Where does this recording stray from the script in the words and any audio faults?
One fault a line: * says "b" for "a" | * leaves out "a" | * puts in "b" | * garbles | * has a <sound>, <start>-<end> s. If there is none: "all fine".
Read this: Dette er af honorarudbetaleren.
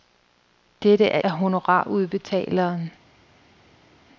all fine